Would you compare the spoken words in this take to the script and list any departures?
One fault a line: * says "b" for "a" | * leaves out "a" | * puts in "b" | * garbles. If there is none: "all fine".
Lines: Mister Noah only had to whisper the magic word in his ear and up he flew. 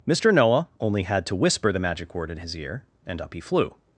all fine